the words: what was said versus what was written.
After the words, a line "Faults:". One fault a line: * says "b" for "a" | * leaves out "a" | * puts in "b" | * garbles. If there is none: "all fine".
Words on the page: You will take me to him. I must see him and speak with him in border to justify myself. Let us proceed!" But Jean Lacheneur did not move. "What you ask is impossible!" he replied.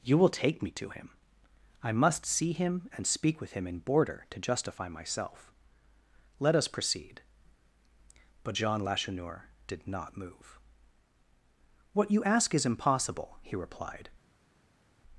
You will take me to him. I must see him and speak with him in border to justify myself. Let us proceed!" But Jean Lacheneur did not move. "What you ask is impossible!" he replied.
Faults:
all fine